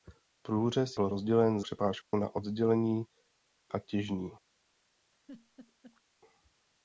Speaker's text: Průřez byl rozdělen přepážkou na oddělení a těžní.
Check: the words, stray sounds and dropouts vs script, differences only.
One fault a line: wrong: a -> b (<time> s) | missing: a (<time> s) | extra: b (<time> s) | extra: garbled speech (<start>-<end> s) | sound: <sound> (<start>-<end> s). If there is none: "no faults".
sound: dropout (2.0-2.1 s)
sound: laugh (5.1-6.0 s)